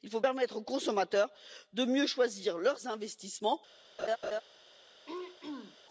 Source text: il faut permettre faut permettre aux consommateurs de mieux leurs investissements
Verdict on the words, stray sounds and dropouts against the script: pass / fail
fail